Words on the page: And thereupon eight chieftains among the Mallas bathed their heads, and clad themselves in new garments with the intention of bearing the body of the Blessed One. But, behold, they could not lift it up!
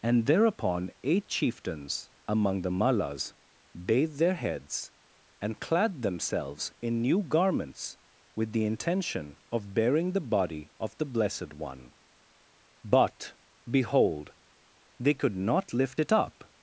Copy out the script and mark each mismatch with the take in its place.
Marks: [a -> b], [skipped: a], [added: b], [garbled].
And thereupon eight chieftains among the Mallas bathed their heads, and clad themselves in new garments with the intention of bearing the body of the Blessed One. But, behold, they could not lift it up!